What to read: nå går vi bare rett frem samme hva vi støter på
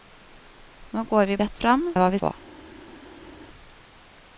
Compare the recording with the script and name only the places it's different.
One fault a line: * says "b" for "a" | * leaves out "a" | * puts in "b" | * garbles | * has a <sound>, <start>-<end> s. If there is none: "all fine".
* leaves out "bare"
* leaves out "samme"
* leaves out "støter"